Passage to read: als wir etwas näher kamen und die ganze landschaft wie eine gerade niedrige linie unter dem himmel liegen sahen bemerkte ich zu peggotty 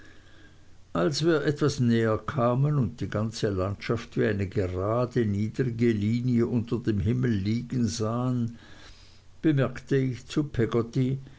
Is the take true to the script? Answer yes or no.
yes